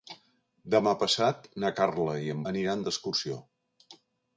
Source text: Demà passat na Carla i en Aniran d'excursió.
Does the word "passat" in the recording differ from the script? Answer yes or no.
no